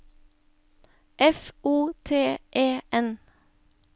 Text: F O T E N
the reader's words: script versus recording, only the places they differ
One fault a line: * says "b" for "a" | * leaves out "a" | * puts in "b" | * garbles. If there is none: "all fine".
all fine